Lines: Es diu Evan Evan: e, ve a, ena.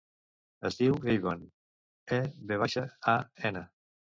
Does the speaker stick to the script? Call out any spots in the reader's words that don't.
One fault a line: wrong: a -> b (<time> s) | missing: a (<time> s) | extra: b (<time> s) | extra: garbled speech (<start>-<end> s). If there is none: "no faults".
missing: Evan (1.4 s)
extra: baixa (2.6 s)